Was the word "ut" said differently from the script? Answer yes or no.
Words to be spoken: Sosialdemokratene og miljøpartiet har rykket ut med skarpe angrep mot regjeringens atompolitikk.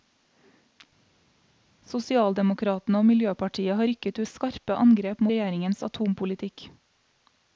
yes